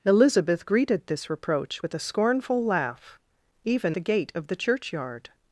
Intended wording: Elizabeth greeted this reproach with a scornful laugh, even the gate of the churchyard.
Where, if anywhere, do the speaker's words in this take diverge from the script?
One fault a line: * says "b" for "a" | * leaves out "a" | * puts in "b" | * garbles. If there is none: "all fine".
all fine